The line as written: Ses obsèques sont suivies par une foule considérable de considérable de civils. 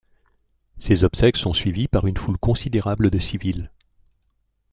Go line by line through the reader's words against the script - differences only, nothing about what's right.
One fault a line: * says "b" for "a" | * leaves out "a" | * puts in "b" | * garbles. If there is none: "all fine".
* leaves out "considérable de"